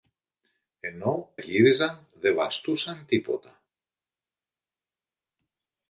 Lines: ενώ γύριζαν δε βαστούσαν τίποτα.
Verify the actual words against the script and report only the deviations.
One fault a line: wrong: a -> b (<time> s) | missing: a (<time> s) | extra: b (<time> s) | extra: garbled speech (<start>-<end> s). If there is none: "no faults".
no faults